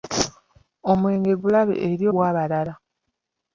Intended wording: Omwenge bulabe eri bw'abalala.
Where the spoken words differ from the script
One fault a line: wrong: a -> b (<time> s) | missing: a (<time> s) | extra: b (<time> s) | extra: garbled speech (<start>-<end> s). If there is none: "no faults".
no faults